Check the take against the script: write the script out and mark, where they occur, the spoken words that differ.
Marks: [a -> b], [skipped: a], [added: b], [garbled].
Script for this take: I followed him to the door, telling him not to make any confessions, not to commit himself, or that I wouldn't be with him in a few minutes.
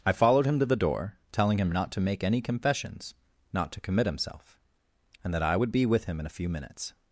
I followed him to the door, telling him not to make any confessions, not to commit himself, [or -> and] that I [wouldn't -> would] be with him in a few minutes.